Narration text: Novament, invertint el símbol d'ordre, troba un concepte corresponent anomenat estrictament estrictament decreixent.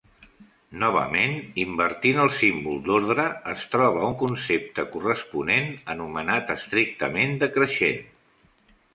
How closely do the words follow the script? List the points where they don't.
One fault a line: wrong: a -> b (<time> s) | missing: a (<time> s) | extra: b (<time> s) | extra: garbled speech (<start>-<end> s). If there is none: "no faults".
extra: es (3.5 s)
missing: estrictament (7.3 s)